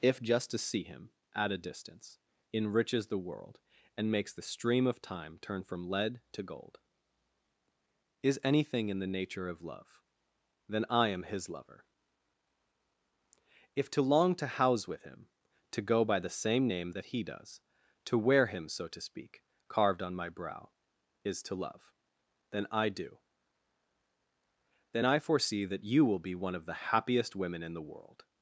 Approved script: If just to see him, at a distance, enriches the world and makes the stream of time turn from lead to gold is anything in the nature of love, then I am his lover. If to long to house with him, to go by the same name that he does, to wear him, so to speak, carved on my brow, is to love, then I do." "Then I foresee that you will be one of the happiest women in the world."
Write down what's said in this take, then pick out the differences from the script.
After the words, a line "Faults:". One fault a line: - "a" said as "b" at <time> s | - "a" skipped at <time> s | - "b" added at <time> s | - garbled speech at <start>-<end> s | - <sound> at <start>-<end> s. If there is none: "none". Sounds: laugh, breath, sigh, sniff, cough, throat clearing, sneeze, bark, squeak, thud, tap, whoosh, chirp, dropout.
If just to see him, at a distance, enriches the world and makes the stream of time turn from lead to gold is anything in the nature of love, then I am his lover. If to long to house with him, to go by the same name that he does, to wear him, so to speak, carved on my brow, is to love, then I do." "Then I foresee that you will be one of the happiest women in the world."
Faults:
none